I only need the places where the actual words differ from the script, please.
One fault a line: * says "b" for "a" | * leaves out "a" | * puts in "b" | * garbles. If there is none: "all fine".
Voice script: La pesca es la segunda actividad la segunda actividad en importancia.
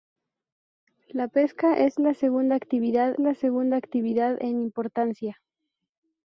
all fine